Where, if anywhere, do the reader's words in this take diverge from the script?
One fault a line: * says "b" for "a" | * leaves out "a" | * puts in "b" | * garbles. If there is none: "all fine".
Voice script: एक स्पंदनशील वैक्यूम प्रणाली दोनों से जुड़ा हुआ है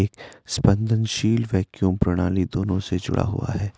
all fine